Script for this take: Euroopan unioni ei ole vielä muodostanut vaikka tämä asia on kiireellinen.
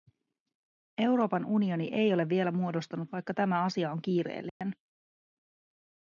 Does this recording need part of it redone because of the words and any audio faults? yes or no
yes